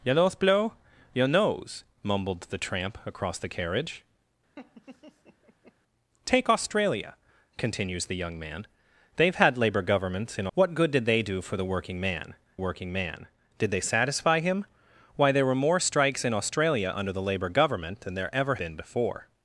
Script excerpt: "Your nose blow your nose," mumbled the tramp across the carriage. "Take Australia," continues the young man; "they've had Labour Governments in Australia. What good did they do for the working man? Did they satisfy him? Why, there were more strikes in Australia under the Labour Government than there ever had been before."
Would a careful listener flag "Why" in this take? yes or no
no